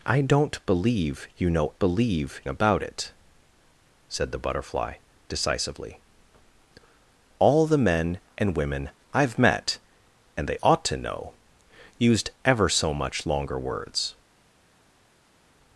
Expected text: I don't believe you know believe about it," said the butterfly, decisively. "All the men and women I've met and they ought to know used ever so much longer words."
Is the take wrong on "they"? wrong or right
right